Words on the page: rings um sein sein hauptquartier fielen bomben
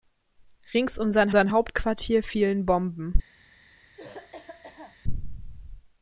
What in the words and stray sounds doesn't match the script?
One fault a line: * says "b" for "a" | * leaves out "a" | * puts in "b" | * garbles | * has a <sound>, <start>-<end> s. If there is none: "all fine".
* has a cough, 4.0-5.0 s